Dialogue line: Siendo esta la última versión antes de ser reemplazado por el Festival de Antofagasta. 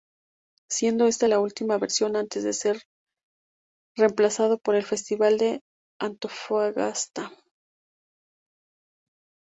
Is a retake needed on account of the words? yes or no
no